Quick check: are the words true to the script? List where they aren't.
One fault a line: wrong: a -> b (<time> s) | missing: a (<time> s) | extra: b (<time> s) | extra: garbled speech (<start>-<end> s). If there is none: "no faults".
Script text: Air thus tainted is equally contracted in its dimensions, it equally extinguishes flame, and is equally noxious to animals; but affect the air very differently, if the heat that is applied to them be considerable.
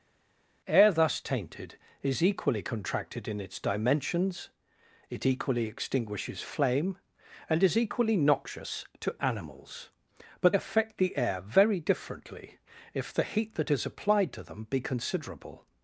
no faults